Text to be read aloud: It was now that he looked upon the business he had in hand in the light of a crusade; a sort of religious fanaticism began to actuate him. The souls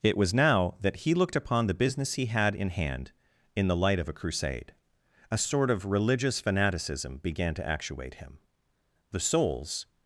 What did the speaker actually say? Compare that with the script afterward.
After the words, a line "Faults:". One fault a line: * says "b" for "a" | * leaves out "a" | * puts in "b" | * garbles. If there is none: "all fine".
It was now that he looked upon the business he had in hand in the light of a crusade; a sort of religious fanaticism began to actuate him. The souls
Faults:
all fine